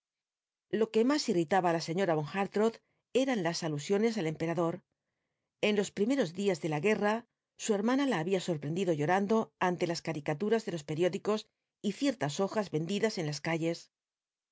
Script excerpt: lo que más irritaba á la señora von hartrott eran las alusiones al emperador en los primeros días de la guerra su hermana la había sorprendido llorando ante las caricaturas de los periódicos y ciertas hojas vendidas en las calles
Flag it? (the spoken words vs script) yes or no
no